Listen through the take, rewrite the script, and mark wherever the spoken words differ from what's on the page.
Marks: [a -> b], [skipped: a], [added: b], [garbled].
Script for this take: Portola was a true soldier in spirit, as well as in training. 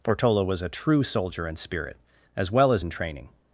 Portola was a true soldier in spirit, as well as in training.